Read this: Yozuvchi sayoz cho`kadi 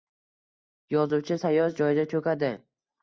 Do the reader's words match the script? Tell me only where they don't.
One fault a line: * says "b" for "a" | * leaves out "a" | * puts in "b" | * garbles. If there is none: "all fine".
* puts in "joyda"